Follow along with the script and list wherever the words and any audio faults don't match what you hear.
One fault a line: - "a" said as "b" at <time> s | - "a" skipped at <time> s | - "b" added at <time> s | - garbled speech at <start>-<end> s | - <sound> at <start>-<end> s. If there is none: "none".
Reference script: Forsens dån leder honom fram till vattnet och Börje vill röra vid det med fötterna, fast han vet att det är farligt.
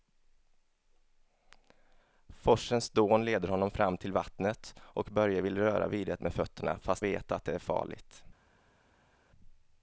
- "han" skipped at 7.0 s